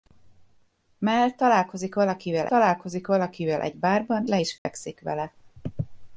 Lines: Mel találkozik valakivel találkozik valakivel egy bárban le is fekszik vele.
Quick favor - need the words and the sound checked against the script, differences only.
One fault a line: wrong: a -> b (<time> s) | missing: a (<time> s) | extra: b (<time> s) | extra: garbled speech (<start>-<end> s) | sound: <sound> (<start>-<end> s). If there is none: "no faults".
sound: dropout (4.6-4.7 s)